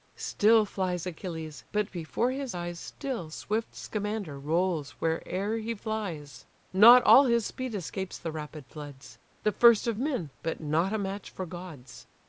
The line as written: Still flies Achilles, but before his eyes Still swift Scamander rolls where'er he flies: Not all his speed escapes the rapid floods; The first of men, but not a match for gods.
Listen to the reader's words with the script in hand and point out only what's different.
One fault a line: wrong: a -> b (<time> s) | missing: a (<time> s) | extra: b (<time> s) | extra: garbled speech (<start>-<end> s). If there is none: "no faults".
no faults